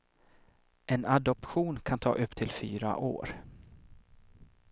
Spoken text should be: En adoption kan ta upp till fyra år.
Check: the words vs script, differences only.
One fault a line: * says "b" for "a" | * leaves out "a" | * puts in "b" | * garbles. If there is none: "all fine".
all fine